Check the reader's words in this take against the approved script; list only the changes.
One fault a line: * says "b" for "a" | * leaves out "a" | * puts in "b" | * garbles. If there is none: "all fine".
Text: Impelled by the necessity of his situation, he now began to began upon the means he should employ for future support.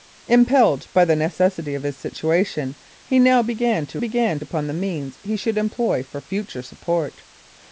all fine